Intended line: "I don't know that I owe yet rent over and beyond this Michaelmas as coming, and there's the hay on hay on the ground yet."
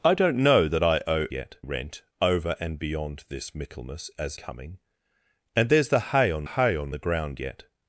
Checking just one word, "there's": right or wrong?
right